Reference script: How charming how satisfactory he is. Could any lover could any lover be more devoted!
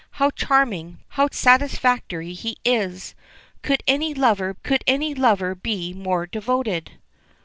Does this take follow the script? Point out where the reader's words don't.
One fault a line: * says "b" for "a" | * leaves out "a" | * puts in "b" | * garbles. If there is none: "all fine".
all fine